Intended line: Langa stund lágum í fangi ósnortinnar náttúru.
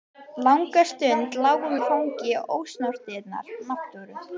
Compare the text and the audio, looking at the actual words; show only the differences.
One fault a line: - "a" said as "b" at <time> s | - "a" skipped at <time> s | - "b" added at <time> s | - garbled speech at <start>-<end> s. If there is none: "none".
none